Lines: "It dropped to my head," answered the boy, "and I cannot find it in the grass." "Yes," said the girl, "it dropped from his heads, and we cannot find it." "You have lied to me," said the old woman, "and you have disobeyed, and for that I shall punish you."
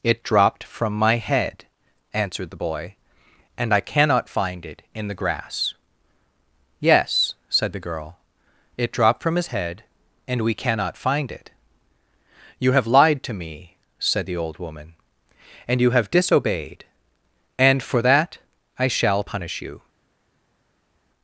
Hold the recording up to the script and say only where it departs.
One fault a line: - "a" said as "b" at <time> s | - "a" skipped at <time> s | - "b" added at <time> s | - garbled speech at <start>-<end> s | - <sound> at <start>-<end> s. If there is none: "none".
- "to" said as "from" at 0.6 s
- "heads" said as "head" at 9.5 s